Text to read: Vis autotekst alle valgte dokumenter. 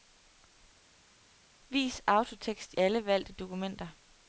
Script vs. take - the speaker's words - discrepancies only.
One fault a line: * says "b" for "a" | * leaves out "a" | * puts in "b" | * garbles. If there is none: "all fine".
all fine